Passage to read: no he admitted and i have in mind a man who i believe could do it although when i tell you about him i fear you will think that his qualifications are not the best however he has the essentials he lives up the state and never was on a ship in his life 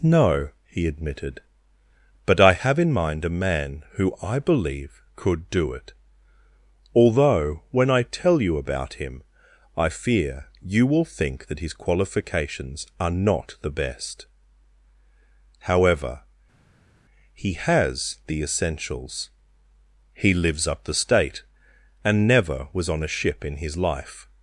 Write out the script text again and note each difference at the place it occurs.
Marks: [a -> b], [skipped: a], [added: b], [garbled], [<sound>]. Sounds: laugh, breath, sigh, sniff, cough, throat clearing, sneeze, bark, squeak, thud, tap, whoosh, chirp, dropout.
no he admitted [and -> but] i have in mind a man who i believe could do it although when i tell you about him i fear you will think that his qualifications are not the best however he has the essentials he lives up the state and never was on a ship in his life